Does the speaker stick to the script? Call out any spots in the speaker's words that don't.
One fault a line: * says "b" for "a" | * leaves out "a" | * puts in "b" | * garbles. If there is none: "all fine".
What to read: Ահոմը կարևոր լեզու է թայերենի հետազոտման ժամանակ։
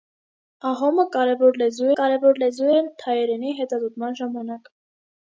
* puts in "կարևոր լեզու"